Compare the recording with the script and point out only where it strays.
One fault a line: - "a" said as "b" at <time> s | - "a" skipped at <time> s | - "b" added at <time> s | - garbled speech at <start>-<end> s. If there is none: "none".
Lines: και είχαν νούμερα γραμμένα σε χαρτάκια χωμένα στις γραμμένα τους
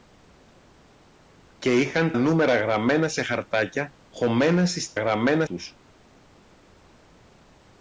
none